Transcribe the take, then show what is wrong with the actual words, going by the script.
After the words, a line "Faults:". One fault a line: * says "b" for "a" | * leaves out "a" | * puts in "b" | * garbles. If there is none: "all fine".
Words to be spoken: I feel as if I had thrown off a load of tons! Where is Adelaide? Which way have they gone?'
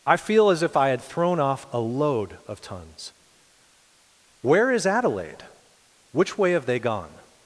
I feel as if I had thrown off a load of tons! Where is Adelaide? Which way have they gone?'
Faults:
all fine